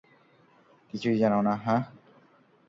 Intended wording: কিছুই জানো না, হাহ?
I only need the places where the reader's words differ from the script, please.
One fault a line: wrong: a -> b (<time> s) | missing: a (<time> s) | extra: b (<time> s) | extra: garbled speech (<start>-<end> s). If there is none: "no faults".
no faults